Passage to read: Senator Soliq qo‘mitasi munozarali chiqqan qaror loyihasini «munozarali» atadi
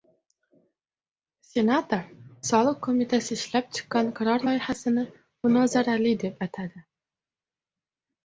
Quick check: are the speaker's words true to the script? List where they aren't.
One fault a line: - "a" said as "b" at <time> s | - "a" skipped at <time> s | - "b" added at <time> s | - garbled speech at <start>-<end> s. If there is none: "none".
- "munozarali" said as "ishlab" at 3.4 s
- "deb" added at 6.2 s